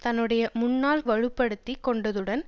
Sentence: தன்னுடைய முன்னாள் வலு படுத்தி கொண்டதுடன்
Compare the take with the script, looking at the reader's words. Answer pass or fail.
pass